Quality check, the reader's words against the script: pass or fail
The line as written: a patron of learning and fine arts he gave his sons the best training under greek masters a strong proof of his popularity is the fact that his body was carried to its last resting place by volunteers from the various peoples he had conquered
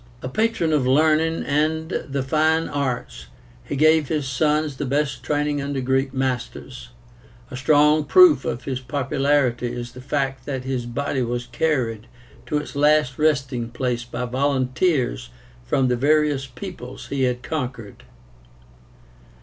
fail